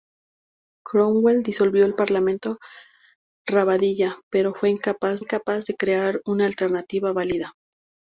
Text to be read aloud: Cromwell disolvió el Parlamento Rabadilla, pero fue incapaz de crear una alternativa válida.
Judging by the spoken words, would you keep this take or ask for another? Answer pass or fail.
fail